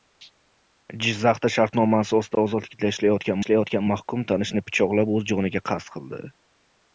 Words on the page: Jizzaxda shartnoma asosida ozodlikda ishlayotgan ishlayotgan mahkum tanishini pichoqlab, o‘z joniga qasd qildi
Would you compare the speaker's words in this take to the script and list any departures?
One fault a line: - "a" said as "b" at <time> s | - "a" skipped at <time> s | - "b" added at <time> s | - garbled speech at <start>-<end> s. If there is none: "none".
none